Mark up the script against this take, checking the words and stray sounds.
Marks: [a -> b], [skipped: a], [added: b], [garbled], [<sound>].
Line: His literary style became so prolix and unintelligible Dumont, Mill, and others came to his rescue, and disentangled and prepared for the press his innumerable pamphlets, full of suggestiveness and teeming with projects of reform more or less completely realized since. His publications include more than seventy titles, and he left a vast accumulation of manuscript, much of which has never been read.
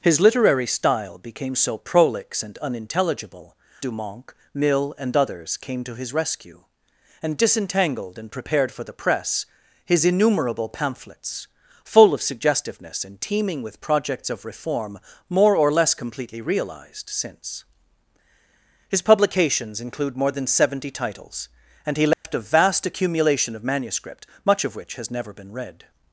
His literary style became so prolix and unintelligible Dumont, Mill, and others came to his rescue, and disentangled and prepared for the press his innumerable pamphlets, full of suggestiveness and teeming with projects of reform more or less completely realized since. His publications include more than seventy titles, and he left [dropout] a vast accumulation of manuscript, much of which has never been read.